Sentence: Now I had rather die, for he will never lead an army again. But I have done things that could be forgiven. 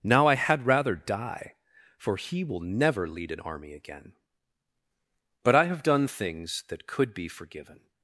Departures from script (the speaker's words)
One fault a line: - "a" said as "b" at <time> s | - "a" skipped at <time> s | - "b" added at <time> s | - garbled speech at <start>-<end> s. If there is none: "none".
none